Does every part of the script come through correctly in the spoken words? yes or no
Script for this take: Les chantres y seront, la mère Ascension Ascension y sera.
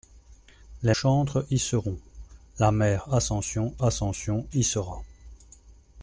yes